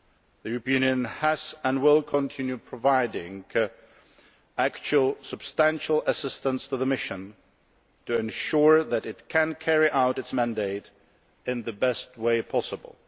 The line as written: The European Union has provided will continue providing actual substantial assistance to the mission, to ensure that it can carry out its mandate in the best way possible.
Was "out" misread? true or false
false